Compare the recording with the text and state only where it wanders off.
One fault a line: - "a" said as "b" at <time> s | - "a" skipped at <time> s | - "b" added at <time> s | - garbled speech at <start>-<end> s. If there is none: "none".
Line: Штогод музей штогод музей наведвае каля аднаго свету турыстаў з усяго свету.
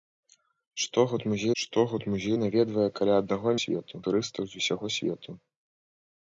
none